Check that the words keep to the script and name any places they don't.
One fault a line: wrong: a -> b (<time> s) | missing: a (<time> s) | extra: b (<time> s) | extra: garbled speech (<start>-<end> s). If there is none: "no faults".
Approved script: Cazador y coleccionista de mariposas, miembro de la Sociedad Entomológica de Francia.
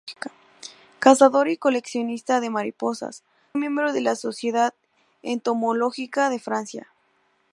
no faults